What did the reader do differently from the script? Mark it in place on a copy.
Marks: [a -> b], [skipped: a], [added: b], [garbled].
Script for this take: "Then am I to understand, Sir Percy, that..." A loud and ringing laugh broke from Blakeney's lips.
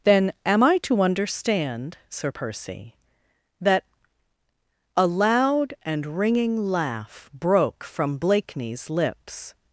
"Then am I to understand, Sir Percy, that..." A loud and ringing laugh broke from Blakeney's lips.